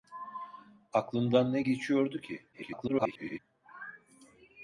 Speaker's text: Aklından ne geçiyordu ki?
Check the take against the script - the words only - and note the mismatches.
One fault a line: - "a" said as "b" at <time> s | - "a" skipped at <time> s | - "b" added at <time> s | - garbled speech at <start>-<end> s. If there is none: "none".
- garbled speech at 2.5-3.4 s